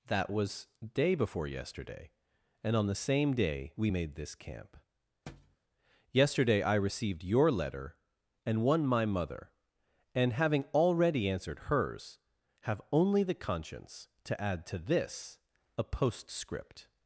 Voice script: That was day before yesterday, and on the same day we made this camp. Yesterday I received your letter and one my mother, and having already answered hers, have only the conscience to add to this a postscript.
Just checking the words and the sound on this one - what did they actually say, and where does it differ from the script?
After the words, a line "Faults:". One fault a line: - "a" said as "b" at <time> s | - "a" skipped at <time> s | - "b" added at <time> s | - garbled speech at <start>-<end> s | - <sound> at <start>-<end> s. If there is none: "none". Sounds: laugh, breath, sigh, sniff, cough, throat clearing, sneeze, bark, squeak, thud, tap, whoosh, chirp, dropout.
That was day before yesterday, and on the same day we made this camp. Yesterday I received your letter and one my mother, and having already answered hers, have only the conscience to add to this a postscript.
Faults:
- thud at 5.3-5.6 s